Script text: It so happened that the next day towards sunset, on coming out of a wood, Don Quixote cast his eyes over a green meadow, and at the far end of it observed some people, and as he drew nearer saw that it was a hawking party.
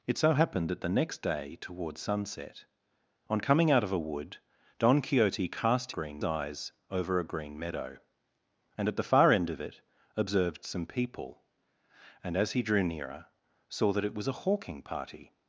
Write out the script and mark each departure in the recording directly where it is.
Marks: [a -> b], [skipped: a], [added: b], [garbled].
It so happened that the next day towards sunset, on coming out of a wood, Don Quixote cast [his -> green] eyes over a green meadow, and at the far end of it observed some people, and as he drew nearer saw that it was a hawking party.